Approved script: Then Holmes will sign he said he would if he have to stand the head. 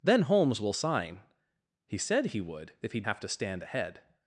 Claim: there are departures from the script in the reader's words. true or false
false